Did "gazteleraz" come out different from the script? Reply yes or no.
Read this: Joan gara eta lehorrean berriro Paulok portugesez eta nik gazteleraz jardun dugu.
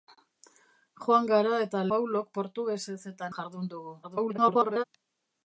yes